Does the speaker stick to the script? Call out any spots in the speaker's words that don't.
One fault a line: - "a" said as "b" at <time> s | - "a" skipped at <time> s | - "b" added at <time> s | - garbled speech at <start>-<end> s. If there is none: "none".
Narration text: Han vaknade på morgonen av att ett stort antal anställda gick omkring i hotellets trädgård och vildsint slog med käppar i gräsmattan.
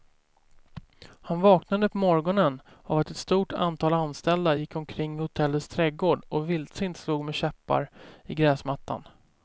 none